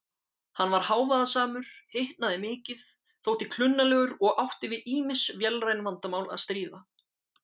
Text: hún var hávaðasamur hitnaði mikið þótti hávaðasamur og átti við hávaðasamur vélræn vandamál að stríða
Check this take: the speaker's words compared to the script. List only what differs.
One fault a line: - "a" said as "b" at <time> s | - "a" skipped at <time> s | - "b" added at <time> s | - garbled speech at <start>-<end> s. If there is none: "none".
- "hún" said as "hann" at 0.6 s
- "hávaðasamur" said as "klunnalegur" at 3.6 s
- "hávaðasamur" said as "ýmis" at 5.0 s